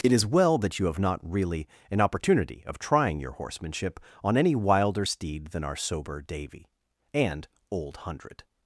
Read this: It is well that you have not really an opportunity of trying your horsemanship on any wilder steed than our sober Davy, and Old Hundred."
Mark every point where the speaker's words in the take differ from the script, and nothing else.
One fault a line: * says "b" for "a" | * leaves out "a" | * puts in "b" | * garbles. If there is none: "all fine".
all fine